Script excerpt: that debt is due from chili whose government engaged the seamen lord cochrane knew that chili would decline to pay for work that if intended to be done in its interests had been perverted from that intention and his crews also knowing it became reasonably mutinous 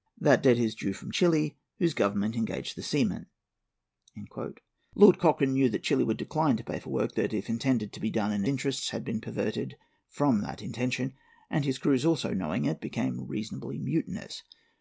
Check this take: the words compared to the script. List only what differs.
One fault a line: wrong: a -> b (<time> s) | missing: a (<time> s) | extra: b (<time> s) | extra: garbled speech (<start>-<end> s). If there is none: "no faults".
missing: its (8.4 s)